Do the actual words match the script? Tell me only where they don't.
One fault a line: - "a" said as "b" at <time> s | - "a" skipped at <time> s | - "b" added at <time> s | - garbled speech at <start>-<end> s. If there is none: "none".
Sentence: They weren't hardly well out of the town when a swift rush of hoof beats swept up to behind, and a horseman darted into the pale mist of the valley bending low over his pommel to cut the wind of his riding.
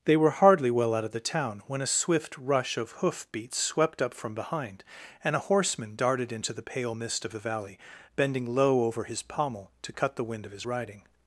- "weren't" said as "were" at 0.2 s
- "to" said as "from" at 4.2 s